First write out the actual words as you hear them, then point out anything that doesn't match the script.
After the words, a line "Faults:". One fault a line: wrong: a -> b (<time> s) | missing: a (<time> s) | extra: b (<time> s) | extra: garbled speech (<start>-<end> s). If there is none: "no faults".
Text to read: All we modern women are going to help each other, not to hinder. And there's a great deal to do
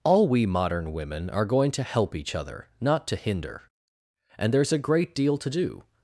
All we modern women are going to help each other, not to hinder. And there's a great deal to do
Faults:
no faults